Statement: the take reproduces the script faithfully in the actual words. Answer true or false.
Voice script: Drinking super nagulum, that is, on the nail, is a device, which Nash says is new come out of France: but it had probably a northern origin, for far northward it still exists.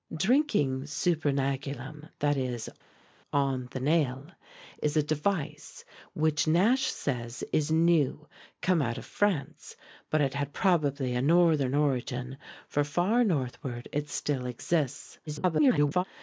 false